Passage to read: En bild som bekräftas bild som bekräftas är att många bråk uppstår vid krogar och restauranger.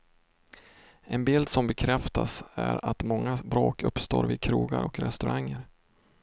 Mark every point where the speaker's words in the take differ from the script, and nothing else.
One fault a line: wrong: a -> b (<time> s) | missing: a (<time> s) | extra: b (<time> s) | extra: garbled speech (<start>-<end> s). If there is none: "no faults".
missing: bild som bekräftas (2.4 s)